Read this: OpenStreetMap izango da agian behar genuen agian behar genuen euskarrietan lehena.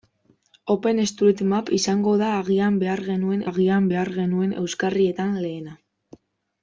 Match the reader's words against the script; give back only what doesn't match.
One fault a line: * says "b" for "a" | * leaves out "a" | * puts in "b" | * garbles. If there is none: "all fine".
all fine